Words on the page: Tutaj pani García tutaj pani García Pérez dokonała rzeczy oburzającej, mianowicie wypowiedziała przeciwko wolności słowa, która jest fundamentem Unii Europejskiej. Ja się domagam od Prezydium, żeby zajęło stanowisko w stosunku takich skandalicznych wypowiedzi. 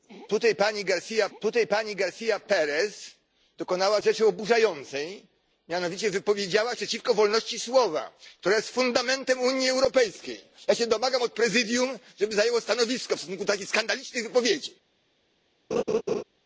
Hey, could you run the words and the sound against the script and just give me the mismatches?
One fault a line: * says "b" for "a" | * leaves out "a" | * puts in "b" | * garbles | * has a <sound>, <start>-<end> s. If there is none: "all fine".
* has a laugh, 15.7-16.2 s